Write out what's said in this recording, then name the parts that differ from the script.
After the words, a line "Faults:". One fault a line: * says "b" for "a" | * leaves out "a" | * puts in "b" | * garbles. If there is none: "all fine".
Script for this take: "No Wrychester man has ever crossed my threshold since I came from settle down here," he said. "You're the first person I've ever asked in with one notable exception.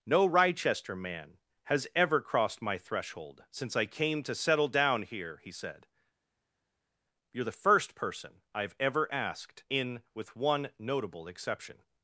"No Wrychester man has ever crossed my threshold since I came to settle down here," he said. "You're the first person I've ever asked in with one notable exception.
Faults:
* says "to" for "from"